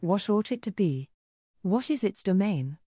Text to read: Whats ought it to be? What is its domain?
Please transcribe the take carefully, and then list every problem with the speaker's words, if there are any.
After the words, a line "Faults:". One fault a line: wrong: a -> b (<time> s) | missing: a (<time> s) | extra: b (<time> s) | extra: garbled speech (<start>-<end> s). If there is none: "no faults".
What ought it to be? What is its domain?
Faults:
wrong: Whats -> What (0.0 s)